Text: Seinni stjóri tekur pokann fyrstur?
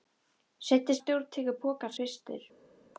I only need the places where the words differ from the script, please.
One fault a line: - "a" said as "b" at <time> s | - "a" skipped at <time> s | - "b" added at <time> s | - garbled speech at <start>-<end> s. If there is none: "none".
none